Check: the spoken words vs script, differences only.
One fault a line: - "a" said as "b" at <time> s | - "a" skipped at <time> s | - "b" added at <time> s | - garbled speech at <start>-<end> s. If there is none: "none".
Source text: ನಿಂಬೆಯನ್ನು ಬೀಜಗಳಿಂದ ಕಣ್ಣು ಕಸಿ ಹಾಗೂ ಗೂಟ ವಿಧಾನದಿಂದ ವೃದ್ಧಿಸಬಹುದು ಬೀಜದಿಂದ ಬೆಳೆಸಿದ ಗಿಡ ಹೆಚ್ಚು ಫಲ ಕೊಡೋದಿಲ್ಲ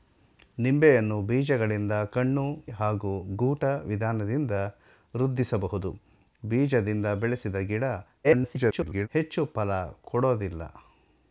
- "ಕಸಿ" skipped at 2.5 s
- garbled speech at 8.2-9.1 s